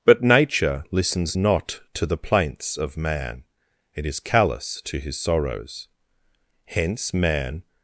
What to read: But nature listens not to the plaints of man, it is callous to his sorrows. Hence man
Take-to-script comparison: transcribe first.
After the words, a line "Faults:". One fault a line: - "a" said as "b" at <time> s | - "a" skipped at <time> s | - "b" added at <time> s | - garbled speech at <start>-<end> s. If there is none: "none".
But nature listens not to the plaints of man, it is callous to his sorrows. Hence man
Faults:
none